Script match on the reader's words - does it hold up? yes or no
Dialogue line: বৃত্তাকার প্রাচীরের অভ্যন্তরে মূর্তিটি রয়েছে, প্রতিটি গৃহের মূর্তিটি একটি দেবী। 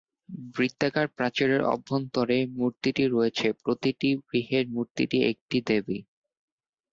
yes